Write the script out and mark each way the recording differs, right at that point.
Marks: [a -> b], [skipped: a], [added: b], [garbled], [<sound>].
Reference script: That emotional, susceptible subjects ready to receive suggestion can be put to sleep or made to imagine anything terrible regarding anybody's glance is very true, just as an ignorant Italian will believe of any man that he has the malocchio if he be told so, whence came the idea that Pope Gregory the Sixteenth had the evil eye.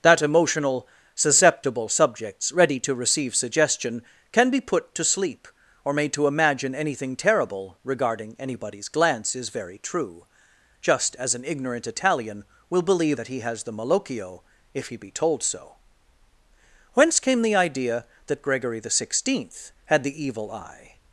That emotional, susceptible subjects ready to receive suggestion can be put to sleep or made to imagine anything terrible regarding anybody's glance is very true, just as an ignorant Italian will believe [skipped: of any man] that he has the malocchio if he be told so, whence came the idea that [skipped: Pope] Gregory the Sixteenth had the evil eye.